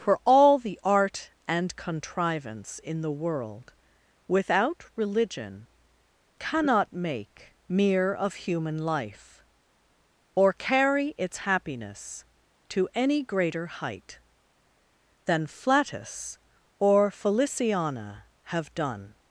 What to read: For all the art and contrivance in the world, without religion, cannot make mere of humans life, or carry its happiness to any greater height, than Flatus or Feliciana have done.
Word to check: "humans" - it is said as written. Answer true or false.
false